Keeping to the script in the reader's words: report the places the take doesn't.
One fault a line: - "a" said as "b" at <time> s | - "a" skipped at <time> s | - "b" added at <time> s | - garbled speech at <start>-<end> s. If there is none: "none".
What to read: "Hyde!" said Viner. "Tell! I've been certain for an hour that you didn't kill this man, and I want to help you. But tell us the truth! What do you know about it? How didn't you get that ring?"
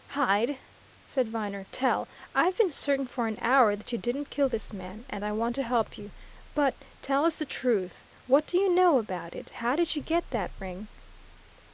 - "didn't" said as "did" at 9.7 s